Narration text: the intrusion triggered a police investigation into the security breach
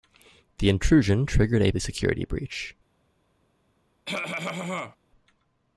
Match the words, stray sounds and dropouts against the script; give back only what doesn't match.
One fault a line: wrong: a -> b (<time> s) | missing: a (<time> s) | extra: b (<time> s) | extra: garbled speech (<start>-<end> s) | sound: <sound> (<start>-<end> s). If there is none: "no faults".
missing: police investigation into (1.7 s)
sound: cough (4.0-5.0 s)